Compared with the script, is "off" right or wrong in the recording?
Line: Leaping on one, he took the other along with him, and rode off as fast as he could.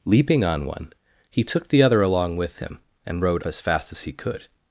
wrong